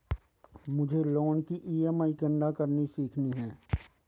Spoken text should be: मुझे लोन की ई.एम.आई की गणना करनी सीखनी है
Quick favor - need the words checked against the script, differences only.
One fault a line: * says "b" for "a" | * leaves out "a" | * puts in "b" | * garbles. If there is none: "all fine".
* leaves out "की"